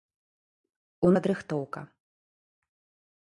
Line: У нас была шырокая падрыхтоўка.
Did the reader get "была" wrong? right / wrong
wrong